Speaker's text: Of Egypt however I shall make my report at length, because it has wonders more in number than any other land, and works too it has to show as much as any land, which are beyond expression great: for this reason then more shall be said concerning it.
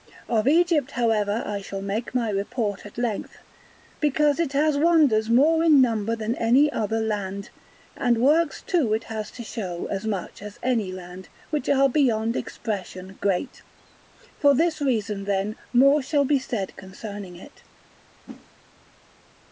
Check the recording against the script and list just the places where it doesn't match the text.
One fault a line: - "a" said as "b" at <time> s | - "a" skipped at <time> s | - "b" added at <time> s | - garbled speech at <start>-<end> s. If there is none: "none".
none